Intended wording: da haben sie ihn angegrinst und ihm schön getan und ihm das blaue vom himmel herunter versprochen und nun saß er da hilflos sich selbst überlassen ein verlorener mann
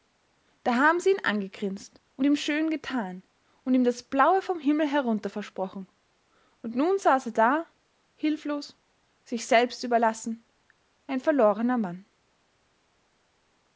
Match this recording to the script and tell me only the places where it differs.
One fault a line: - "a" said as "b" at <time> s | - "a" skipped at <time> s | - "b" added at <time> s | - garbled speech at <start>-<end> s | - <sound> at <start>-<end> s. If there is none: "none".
none